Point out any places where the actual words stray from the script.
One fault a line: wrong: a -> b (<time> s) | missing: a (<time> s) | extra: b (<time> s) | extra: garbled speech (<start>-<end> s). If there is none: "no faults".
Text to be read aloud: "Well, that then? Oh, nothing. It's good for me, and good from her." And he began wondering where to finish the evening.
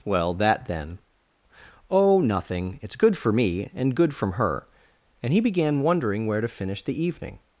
no faults